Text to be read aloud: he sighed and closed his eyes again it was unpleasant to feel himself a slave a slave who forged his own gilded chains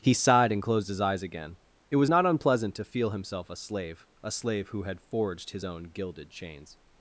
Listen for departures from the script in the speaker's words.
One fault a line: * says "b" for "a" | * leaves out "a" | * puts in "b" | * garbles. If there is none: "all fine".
* puts in "not"
* puts in "had"